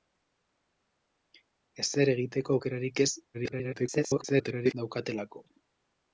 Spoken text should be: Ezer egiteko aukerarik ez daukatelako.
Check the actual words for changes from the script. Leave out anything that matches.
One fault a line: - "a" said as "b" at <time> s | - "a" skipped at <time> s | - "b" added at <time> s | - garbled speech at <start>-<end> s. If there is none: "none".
- garbled speech at 3.3-4.7 s